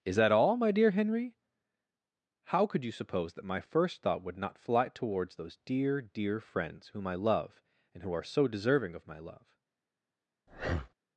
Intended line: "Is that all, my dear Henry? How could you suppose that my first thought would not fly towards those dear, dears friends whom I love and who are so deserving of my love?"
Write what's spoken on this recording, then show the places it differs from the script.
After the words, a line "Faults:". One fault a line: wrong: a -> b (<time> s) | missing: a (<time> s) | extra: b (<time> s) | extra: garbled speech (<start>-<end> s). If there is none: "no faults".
"Is that all, my dear Henry? How could you suppose that my first thought would not fly towards those dear, dear friends whom I love and who are so deserving of my love?"
Faults:
wrong: dears -> dear (6.0 s)